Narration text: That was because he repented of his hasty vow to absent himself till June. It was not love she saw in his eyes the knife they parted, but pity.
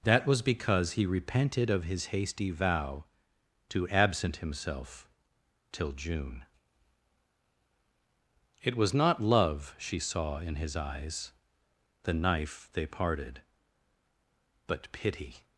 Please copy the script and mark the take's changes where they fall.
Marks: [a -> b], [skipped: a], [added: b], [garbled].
That was because he repented of his hasty vow to absent himself till June. It was not love she saw in his eyes the knife they parted, but pity.